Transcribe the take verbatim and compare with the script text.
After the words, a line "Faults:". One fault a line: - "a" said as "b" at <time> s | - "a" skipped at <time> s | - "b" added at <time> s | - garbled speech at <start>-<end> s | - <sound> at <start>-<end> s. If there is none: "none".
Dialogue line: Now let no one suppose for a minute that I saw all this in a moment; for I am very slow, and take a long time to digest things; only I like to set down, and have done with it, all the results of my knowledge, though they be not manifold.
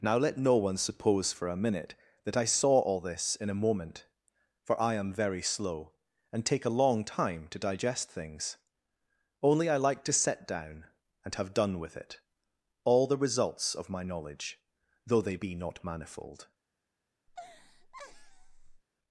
Now let no one suppose for a minute that I saw all this in a moment; for I am very slow, and take a long time to digest things; only I like to set down, and have done with it, all the results of my knowledge, though they be not manifold.
Faults:
- laugh at 17.3-18.8 s